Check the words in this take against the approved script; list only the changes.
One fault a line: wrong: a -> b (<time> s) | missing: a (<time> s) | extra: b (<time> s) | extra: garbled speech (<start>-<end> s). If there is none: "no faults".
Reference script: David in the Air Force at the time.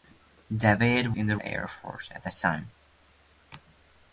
no faults